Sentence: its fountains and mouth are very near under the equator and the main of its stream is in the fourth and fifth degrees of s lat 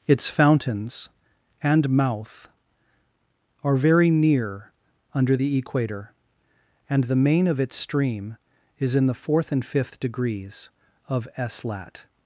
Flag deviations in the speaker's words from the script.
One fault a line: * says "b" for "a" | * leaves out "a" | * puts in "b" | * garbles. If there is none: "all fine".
all fine